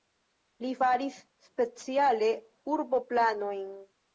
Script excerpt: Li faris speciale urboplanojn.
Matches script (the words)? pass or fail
pass